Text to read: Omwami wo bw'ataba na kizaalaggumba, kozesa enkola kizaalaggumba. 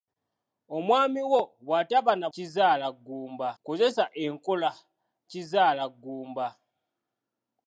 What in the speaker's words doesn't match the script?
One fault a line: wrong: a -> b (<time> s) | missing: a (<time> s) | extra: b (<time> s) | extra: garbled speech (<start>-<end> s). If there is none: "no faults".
no faults